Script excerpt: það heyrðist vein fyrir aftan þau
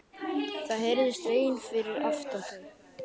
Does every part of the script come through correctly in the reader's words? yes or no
yes